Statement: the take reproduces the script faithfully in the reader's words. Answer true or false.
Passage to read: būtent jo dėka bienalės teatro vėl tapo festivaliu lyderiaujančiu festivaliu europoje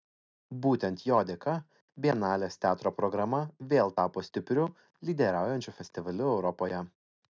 false